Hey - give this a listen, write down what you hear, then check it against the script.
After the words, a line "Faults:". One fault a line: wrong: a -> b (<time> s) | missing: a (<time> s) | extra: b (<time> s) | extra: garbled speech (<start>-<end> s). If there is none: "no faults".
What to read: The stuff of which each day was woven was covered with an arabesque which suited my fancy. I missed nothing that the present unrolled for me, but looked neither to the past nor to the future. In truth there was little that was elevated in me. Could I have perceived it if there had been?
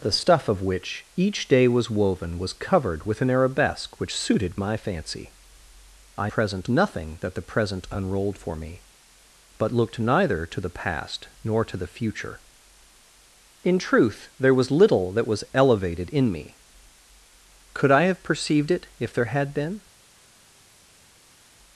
The stuff of which each day was woven was covered with an arabesque which suited my fancy. I present nothing that the present unrolled for me, but looked neither to the past nor to the future. In truth there was little that was elevated in me. Could I have perceived it if there had been?
Faults:
wrong: missed -> present (6.3 s)